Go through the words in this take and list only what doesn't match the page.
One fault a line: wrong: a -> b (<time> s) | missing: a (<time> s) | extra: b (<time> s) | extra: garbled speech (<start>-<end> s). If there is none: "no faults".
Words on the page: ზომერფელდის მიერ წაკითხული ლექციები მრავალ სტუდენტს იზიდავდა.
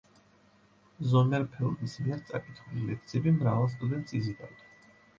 no faults